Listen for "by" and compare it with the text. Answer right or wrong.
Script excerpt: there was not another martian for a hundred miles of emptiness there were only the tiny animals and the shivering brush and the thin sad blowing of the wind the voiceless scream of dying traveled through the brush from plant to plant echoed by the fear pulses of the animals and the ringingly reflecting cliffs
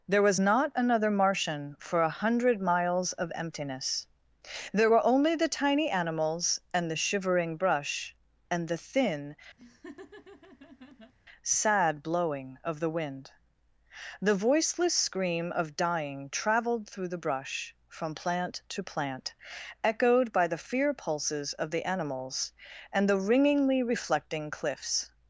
right